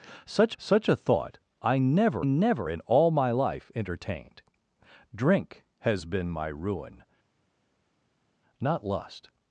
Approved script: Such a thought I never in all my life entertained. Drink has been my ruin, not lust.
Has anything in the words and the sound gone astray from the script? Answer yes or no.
yes